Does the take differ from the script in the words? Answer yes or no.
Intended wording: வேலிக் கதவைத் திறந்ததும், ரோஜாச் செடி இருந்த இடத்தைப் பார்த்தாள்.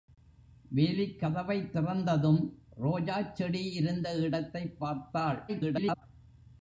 yes